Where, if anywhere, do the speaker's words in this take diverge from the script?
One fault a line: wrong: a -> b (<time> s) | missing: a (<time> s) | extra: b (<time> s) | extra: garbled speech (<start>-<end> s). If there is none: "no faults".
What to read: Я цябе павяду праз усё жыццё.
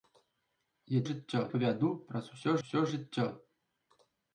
wrong: цябе -> жыццё (1.1 s)
extra: усё (2.6 s)